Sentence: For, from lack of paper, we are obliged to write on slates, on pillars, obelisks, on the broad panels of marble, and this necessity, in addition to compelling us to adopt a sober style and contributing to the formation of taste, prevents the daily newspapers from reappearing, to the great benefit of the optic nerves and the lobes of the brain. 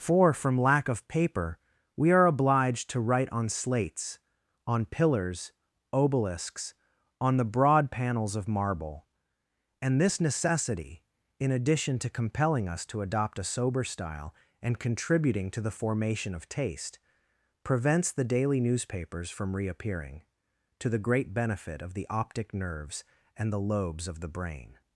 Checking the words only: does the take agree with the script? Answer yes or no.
yes